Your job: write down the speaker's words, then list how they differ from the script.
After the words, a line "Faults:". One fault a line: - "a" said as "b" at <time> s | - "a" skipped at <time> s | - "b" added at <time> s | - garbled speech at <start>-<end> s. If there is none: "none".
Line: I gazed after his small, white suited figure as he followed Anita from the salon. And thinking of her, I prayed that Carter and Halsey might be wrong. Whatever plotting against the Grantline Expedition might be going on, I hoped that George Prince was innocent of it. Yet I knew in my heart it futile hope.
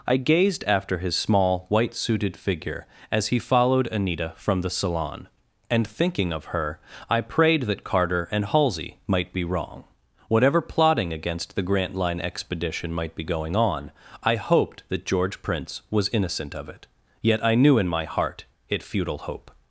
I gazed after his small, white suited figure as he followed Anita from the salon. And thinking of her, I prayed that Carter and Halsey might be wrong. Whatever plotting against the Grantline Expedition might be going on, I hoped that George Prince was innocent of it. Yet I knew in my heart it futile hope.
Faults:
none